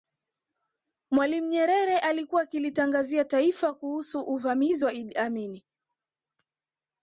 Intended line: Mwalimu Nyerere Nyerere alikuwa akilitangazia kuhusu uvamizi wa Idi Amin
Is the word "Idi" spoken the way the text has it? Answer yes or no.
yes